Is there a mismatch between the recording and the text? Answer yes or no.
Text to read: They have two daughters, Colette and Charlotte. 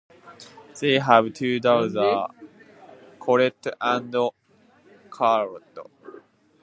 no